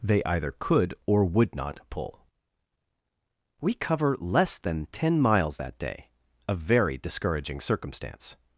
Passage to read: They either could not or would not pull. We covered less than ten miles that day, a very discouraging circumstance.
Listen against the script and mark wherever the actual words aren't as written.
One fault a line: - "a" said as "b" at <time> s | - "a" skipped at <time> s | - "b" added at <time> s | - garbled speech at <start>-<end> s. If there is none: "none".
- "not" skipped at 0.9 s
- "covered" said as "cover" at 3.7 s